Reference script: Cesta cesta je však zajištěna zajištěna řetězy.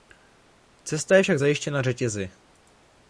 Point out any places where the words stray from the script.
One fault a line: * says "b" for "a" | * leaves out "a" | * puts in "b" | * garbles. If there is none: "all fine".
* leaves out "cesta"
* leaves out "zajištěna"